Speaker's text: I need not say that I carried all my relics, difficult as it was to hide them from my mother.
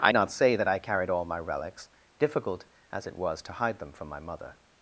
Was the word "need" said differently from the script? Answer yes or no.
yes